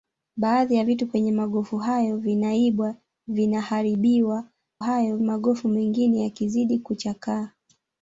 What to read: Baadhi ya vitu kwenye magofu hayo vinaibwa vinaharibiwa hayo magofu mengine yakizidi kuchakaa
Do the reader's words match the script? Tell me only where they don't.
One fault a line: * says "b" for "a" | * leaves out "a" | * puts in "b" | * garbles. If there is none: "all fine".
all fine